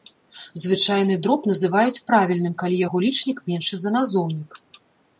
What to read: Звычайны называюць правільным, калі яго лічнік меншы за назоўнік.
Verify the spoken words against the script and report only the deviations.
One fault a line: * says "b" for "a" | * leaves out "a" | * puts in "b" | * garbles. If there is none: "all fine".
* puts in "дроб"